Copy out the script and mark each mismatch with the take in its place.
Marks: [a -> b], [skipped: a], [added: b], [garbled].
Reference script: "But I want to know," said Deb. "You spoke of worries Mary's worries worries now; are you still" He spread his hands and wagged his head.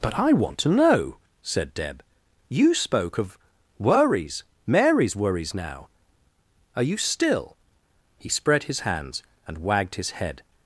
"But I want to know," said Deb. "You spoke of worries Mary's worries [skipped: worries] now; are you still" He spread his hands and wagged his head.